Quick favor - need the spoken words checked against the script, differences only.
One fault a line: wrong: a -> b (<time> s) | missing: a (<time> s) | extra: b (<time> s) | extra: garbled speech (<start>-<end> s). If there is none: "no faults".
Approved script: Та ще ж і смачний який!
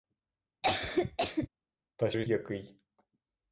missing: ще (2.1 s)
missing: смачний (2.2 s)